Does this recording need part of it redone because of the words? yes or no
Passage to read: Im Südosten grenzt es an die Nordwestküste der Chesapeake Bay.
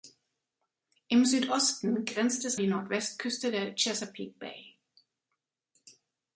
yes